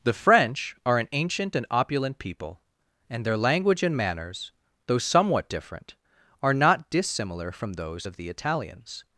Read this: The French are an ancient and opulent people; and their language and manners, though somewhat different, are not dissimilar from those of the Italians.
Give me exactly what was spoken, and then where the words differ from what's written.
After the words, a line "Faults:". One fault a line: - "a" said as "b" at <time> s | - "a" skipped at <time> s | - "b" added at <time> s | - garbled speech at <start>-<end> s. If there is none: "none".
The French are an ancient and opulent people; and their language and manners, though somewhat different, are not dissimilar from those of the Italians.
Faults:
none